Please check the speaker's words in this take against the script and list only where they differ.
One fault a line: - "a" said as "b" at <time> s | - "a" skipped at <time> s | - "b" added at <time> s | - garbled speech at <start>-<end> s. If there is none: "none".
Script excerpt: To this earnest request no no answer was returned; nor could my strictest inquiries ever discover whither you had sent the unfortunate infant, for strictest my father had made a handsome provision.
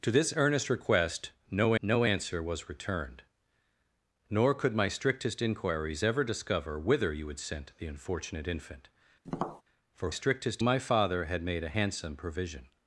none